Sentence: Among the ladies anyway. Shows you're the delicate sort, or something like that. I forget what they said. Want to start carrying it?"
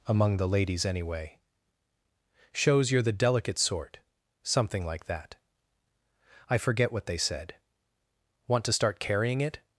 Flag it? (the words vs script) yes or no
yes